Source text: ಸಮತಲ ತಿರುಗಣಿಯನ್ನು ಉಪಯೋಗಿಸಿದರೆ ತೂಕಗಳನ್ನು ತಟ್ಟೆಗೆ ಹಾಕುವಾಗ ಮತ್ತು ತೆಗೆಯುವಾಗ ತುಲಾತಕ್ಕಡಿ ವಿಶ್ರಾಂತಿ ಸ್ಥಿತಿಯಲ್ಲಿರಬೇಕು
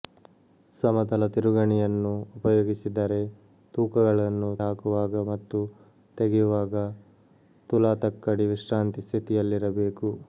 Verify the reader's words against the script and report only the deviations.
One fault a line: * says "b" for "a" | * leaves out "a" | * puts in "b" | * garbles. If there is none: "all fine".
* leaves out "ತಟ್ಟೆಗೆ"